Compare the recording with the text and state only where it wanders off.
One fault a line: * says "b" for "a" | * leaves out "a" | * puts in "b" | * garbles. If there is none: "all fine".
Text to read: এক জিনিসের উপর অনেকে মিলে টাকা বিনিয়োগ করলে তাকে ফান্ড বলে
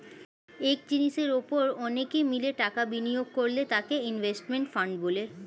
* puts in "ইনভেস্টমেন্ট"